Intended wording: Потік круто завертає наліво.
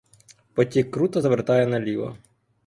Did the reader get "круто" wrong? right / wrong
right